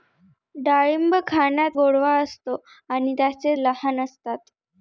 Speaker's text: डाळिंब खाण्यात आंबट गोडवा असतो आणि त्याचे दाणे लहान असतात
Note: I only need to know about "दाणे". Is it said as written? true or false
false